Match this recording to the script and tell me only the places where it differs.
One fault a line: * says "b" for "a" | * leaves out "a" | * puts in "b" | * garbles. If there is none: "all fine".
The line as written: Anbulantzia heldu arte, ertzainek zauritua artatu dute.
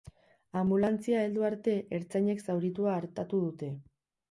all fine